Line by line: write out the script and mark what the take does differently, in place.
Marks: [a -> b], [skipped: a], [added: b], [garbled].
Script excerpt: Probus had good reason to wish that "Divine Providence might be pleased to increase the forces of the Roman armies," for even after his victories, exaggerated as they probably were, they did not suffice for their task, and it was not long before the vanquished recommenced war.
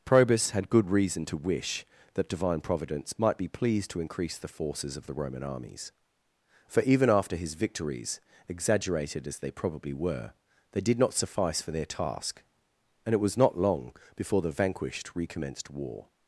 Probus had good reason to wish that "Divine Providence might be pleased to increase the forces of the Roman armies," for even after his victories, exaggerated as they probably were, they did not suffice for their task, and it was not long before the vanquished recommenced war.